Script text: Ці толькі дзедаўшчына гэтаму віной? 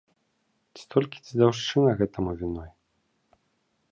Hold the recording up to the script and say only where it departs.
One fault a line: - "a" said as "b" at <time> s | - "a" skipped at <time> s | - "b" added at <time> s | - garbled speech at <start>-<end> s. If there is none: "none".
none